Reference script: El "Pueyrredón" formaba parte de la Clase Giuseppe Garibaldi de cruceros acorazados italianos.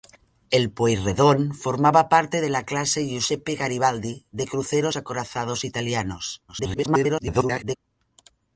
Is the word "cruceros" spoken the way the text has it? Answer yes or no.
yes